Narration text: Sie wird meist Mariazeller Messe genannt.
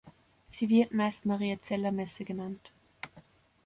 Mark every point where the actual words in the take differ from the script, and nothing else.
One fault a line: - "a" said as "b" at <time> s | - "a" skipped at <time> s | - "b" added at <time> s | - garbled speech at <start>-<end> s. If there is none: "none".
none